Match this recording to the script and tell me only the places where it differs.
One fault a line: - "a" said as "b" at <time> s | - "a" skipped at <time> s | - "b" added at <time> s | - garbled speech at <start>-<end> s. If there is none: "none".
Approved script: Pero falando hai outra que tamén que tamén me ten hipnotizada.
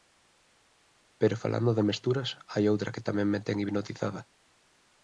- "de mesturas" added at 1.8 s
- "que tamén" skipped at 3.3 s